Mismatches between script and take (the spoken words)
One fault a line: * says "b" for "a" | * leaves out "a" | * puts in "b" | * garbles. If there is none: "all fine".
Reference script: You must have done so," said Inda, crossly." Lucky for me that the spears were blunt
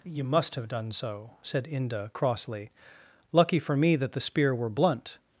* says "spear" for "spears"